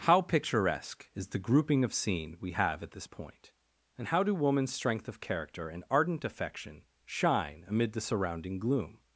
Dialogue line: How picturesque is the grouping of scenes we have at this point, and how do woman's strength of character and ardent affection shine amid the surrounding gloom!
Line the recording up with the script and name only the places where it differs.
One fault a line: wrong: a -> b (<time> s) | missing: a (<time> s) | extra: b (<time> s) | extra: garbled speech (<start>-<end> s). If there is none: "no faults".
wrong: scenes -> scene (1.9 s)